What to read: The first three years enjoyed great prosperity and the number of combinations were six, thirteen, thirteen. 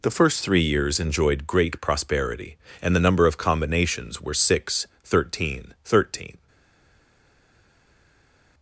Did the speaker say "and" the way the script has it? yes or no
yes